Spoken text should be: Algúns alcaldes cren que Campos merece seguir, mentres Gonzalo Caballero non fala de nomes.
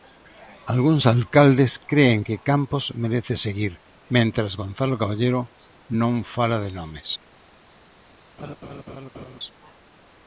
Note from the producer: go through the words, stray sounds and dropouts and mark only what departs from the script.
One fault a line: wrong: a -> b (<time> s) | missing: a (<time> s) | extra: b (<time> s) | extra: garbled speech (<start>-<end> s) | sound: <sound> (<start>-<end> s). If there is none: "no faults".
sound: laugh (8.4-9.4 s)